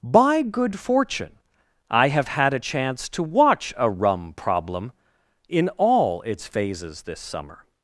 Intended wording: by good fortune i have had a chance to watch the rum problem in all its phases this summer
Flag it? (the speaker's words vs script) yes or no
yes